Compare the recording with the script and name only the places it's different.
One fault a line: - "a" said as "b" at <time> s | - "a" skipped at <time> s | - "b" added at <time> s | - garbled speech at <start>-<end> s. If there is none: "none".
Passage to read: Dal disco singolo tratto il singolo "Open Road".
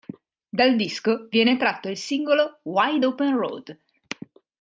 - "singolo" said as "viene" at 1.3 s
- "Wide" added at 2.6 s